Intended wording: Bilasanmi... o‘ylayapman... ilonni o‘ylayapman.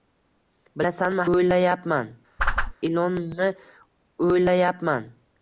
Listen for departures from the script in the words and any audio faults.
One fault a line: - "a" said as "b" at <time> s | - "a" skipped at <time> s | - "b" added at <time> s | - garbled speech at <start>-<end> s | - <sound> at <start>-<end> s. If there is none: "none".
- whoosh at 2.4-2.7 s